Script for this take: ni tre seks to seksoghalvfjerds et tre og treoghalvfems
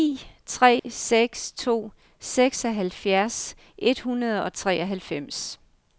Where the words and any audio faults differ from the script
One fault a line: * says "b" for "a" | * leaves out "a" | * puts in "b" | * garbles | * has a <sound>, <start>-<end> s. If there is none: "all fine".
* has a dropout, 0.8-0.8 s
* says "hundrede" for "tre"